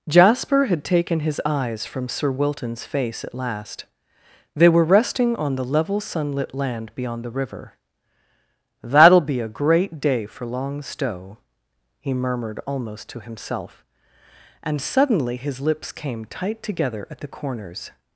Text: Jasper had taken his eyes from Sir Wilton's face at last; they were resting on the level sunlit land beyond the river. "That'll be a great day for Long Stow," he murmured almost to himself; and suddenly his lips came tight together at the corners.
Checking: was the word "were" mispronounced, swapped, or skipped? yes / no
no